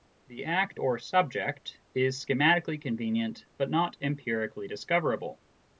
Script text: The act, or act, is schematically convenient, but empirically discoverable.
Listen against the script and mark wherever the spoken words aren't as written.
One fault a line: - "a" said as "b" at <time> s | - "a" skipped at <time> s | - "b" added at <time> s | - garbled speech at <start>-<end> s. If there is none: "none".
- "act" said as "subject" at 1.0 s
- "not" added at 3.7 s